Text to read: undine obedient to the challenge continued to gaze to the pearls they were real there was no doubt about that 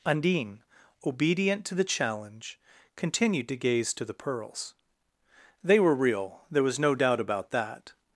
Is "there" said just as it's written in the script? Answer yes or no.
yes